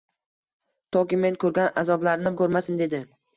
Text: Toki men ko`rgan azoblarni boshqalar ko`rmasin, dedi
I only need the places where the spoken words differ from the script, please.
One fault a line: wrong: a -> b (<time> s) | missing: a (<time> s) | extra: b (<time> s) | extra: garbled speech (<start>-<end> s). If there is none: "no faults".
missing: boshqalar (2.3 s)